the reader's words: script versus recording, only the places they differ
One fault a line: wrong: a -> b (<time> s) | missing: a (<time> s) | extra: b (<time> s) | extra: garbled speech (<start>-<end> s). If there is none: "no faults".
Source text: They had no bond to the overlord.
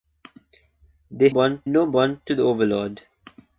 wrong: had -> bond (1.3 s)